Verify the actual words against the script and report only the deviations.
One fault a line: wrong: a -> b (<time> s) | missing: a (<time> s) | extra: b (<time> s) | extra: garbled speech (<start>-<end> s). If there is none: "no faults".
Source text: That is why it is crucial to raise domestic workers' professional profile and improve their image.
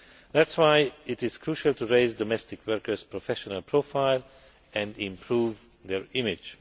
no faults